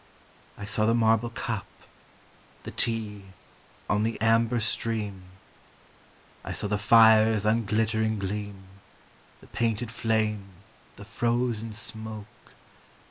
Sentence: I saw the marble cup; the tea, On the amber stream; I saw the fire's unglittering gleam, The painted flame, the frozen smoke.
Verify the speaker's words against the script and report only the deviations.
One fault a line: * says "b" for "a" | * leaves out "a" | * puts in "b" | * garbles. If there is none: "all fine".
all fine